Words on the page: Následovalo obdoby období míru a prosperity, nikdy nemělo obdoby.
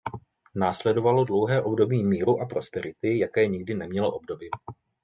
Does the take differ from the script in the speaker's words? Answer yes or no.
yes